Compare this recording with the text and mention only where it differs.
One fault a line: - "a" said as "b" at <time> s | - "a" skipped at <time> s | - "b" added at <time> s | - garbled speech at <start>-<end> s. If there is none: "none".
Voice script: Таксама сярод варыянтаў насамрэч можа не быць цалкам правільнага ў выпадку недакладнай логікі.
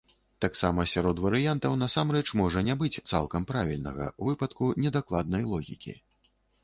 none